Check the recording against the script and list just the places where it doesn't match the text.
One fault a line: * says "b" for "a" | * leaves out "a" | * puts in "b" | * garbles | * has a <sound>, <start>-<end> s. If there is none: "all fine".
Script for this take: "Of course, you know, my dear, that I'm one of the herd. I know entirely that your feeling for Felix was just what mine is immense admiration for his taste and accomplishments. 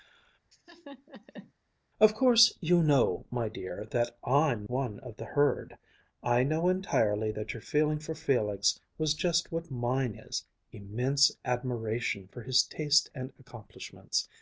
* has a laugh, 0.5-1.5 s